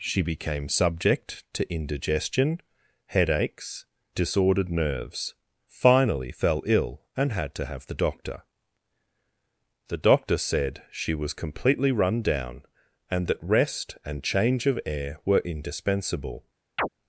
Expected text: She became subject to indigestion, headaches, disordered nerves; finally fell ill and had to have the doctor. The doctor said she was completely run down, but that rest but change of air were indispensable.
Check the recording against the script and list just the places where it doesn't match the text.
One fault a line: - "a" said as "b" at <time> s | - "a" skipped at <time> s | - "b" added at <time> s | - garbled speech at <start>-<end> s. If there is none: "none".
- "but" said as "and" at 13.1 s
- "but" said as "and" at 14.0 s